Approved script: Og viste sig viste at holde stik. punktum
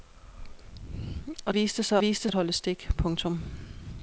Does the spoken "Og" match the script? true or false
true